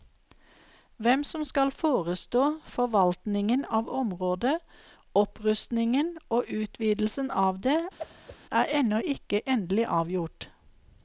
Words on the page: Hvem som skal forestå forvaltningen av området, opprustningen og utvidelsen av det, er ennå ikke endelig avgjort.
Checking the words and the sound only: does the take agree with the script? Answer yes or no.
no